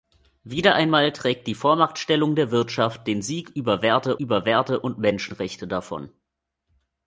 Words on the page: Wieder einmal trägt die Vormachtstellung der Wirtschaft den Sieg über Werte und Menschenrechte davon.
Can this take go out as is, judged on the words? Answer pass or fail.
fail